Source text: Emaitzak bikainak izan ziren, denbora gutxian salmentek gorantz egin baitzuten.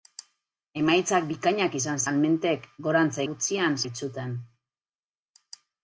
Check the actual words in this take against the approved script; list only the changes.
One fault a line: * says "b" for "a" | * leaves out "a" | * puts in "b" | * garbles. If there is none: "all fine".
* leaves out "ziren denbora gutxian"
* says "gutxian" for "egin"